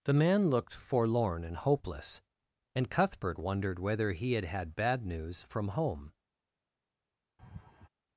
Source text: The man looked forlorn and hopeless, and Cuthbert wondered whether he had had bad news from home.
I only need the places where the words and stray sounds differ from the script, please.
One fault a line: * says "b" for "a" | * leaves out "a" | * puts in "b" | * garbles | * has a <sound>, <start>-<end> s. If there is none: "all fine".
* has a laugh, 7.4-7.9 s